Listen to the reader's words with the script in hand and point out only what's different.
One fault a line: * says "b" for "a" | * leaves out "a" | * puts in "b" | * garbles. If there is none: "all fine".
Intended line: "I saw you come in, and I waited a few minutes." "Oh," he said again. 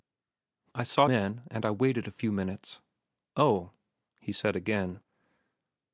* leaves out "you come"